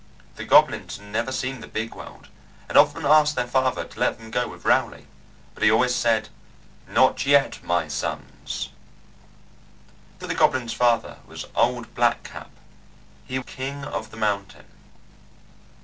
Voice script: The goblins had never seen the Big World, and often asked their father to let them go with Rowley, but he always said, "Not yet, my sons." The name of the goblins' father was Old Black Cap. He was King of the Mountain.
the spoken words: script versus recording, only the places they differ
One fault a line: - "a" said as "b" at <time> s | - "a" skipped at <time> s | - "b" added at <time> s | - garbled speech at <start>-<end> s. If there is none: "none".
- "name" skipped at 10.2 s
- "was" skipped at 13.4 s